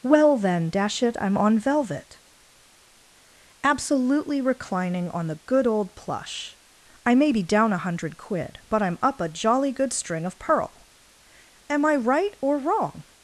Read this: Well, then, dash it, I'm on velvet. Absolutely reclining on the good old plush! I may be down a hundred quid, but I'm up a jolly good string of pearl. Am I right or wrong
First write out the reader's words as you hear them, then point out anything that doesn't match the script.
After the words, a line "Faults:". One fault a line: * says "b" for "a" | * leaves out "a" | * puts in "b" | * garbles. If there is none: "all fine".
Well, then, dash it, I'm on velvet. Absolutely reclining on the good old plush! I may be down a hundred quid, but I'm up a jolly good string of pearl. Am I right or wrong
Faults:
all fine